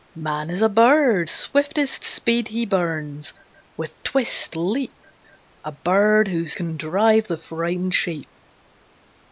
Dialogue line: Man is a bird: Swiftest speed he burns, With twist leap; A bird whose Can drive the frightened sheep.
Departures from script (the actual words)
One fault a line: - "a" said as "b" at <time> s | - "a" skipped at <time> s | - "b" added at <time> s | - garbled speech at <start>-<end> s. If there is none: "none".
none